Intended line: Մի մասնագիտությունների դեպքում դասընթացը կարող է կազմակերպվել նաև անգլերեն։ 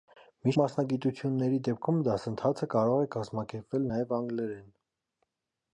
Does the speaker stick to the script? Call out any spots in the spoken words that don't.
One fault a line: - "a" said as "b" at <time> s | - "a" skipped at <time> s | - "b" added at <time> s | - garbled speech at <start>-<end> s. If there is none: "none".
none